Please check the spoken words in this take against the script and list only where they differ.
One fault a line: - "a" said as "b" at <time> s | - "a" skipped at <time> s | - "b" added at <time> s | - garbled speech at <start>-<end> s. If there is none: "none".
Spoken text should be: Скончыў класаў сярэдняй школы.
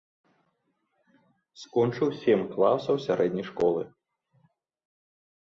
- "сем" added at 2.2 s